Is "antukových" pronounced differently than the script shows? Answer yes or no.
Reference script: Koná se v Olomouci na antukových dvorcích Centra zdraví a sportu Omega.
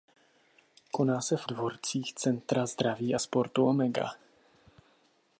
yes